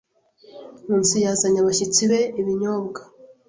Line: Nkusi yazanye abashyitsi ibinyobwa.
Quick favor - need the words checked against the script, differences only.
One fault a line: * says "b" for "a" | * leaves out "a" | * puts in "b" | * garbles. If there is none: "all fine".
* puts in "be"